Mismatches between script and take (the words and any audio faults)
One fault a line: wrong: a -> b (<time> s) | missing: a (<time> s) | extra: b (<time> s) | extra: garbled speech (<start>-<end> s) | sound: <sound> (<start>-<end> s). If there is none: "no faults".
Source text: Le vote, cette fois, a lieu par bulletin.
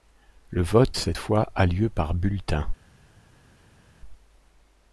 no faults